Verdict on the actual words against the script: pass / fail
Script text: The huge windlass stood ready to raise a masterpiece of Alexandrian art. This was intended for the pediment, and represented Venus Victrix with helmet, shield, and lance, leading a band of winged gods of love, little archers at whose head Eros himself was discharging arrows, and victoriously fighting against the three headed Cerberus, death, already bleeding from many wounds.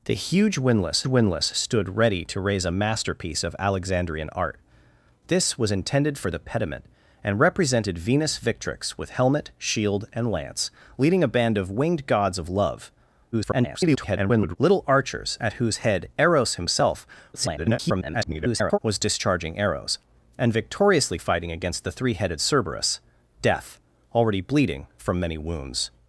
fail